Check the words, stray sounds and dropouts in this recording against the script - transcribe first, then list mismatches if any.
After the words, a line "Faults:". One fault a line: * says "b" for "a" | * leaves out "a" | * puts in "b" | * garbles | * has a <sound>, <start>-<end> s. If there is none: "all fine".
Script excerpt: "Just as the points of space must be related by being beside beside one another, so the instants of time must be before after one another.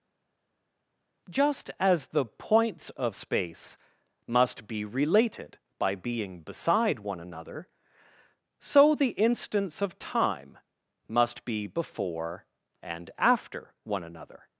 "Just as the points of space must be related by being beside one another, so the instants of time must be before and after one another.
Faults:
* leaves out "beside"
* puts in "and"